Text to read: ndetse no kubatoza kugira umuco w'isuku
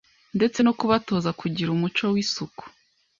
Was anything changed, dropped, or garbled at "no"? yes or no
no